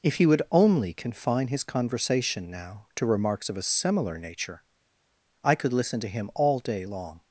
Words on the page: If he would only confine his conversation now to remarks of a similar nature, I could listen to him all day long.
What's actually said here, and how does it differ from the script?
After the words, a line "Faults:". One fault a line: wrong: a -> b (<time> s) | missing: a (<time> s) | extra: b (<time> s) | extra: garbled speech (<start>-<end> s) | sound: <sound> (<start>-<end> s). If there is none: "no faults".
If he would only confine his conversation now to remarks of a similar nature, I could listen to him all day long.
Faults:
no faults